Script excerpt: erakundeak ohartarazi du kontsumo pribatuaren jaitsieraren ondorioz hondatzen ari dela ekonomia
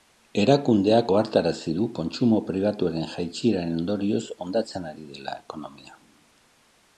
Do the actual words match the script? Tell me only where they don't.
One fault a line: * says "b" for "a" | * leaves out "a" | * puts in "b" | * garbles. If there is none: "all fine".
all fine